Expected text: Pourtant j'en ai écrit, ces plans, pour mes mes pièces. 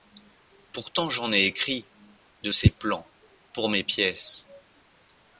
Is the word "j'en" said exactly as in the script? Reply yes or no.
yes